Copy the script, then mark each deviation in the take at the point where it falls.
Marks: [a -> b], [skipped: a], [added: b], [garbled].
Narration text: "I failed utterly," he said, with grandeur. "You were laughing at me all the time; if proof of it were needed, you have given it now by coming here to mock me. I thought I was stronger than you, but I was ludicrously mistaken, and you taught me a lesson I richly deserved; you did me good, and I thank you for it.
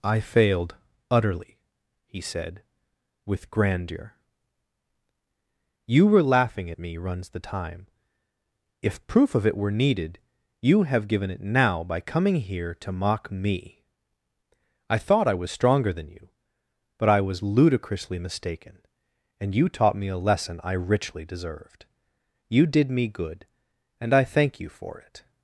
"I failed utterly," he said, with grandeur. "You were laughing at me [all -> runs] the time; if proof of it were needed, you have given it now by coming here to mock me. I thought I was stronger than you, but I was ludicrously mistaken, and you taught me a lesson I richly deserved; you did me good, and I thank you for it.